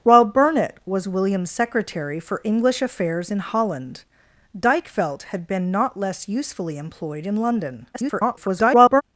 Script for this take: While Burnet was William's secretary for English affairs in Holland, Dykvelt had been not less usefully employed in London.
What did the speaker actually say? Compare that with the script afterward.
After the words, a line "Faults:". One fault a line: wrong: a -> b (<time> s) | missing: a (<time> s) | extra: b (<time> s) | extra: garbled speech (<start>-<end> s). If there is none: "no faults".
While Burnet was William's secretary for English affairs in Holland, Dykvelt had been not less usefully employed in London. [garbled]
Faults:
extra: garbled speech (7.9-9.0 s)